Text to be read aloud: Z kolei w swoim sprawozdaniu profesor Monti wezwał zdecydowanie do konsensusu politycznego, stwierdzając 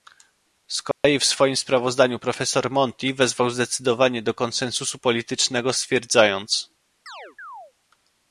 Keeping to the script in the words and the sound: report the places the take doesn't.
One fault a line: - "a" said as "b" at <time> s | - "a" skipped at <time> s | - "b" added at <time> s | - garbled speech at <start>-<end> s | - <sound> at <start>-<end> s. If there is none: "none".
- dropout at 0.9-1.0 s
- chirp at 7.1-7.7 s